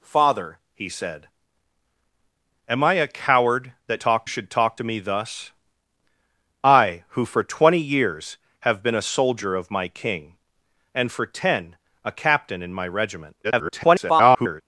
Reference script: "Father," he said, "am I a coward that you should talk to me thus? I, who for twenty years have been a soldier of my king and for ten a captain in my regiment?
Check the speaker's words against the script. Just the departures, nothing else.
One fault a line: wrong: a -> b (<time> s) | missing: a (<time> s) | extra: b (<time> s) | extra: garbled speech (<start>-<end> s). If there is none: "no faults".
wrong: you -> talk (4.0 s)
extra: garbled speech (13.4-14.6 s)